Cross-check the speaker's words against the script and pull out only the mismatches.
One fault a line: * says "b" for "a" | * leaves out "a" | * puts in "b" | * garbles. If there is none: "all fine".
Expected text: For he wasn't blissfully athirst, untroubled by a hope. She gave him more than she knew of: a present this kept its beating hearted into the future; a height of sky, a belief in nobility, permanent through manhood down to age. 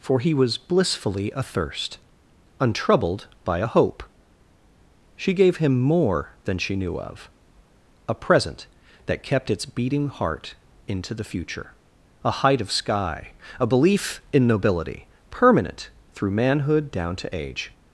* says "was" for "wasn't"
* says "that" for "this"
* says "heart" for "hearted"